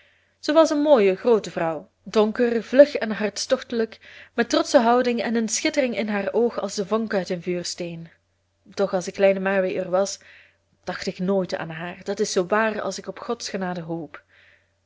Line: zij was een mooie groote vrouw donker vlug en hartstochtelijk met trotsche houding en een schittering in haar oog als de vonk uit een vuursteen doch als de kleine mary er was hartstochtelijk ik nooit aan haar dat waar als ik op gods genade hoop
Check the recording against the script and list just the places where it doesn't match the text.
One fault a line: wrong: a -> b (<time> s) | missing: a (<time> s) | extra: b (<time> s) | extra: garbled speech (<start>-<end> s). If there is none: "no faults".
wrong: hartstochtelijk -> dacht (10.8 s)
extra: is zoo (12.2 s)